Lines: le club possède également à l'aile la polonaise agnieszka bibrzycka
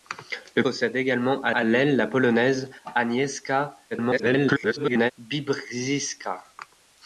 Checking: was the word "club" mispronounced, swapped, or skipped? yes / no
yes